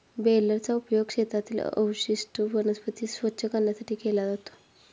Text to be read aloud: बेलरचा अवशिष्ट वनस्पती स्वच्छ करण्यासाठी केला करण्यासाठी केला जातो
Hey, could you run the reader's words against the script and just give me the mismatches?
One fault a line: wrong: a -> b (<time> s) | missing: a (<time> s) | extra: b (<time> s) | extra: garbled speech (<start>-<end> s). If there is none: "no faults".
extra: उपयोग शेतातील (0.8 s)
missing: करण्यासाठी केला (4.3 s)